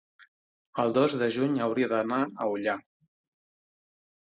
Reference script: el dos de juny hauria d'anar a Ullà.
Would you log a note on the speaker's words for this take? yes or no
no